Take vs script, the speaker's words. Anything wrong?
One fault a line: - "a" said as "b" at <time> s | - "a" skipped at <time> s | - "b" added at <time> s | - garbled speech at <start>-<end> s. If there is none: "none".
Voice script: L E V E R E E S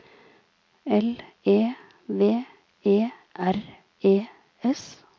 - "E" skipped at 4.3 s